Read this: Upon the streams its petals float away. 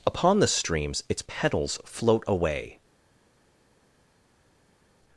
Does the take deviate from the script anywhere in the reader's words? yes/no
no